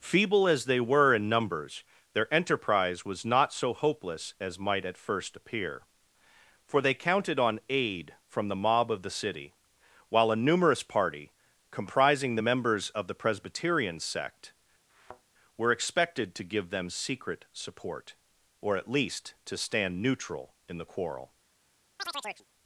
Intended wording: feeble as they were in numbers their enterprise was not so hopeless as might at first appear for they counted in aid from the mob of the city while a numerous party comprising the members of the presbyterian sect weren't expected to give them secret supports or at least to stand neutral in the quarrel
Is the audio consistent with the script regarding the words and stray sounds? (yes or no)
no